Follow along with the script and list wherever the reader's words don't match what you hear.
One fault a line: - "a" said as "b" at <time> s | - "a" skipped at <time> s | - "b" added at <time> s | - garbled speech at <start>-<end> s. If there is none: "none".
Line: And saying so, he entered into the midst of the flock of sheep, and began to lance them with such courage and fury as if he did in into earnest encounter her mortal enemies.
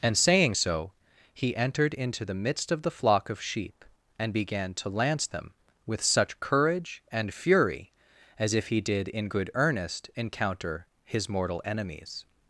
- "into" said as "good" at 9.3 s
- "her" said as "his" at 11.0 s